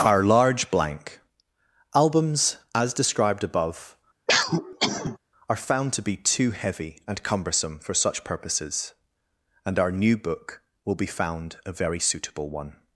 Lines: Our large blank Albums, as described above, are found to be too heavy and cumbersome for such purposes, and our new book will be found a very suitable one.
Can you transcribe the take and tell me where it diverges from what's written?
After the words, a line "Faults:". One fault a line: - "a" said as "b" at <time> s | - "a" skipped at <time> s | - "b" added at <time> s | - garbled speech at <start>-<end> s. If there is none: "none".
Our large blank Albums, as described above, are found to be too heavy and cumbersome for such purposes, and our new book will be found a very suitable one.
Faults:
none